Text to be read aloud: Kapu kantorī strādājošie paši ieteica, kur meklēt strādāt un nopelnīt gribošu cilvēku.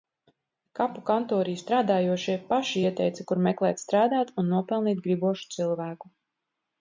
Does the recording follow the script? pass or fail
pass